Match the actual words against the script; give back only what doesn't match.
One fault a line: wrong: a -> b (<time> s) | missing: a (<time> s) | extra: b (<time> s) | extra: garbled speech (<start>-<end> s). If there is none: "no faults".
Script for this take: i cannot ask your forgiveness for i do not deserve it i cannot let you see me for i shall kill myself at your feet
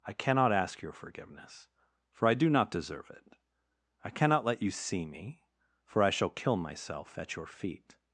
no faults